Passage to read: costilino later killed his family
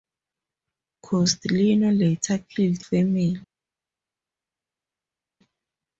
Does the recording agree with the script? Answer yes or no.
no